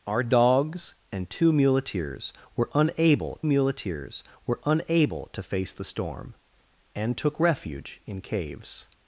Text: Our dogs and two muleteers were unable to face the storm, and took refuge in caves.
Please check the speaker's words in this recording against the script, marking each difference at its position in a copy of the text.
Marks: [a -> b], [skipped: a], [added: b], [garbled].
Our dogs and two muleteers were unable [added: muleteers were unable] to face the storm, and took refuge in caves.